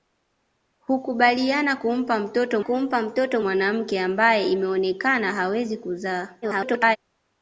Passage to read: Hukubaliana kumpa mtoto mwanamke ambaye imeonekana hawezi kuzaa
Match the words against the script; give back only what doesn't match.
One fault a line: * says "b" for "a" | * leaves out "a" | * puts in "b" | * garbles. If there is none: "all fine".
* puts in "kumpa mtoto"
* garbles